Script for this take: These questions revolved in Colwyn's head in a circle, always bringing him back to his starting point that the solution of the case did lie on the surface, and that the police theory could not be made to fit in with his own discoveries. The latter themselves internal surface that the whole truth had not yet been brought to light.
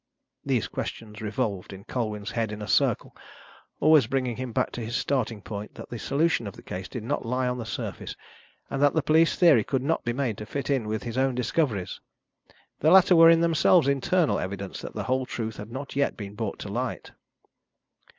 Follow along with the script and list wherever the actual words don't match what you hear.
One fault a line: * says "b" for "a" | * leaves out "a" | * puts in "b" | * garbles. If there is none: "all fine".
* puts in "not"
* puts in "were in"
* says "evidence" for "surface"